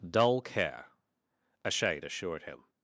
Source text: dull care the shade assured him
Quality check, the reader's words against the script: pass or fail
fail